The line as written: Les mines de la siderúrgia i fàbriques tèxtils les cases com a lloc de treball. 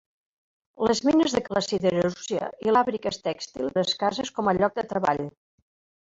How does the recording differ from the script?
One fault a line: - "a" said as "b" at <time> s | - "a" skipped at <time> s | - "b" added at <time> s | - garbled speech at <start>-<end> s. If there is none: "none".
none